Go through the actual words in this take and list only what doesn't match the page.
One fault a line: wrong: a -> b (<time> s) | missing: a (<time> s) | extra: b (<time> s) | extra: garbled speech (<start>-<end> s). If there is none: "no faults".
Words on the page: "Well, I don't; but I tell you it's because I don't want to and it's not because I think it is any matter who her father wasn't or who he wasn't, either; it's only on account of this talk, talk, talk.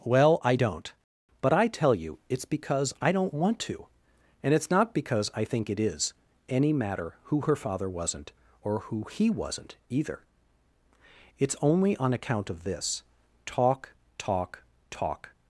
no faults